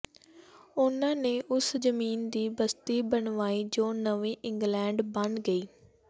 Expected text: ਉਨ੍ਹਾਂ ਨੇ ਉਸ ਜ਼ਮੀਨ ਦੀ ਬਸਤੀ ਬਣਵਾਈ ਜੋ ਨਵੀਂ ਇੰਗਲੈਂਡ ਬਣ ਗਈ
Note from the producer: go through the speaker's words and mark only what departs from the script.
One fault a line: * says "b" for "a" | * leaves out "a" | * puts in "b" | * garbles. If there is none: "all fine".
all fine